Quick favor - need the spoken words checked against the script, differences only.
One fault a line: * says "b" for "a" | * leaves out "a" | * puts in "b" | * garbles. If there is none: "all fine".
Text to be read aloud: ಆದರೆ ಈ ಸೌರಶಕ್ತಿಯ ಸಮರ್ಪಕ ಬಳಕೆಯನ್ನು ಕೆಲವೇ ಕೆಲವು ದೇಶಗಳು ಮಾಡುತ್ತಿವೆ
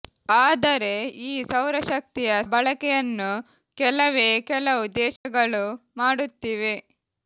* leaves out "ಸಮರ್ಪಕ"